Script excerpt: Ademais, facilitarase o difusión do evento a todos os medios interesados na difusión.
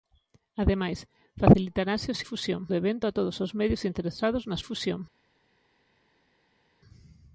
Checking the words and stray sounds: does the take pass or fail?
pass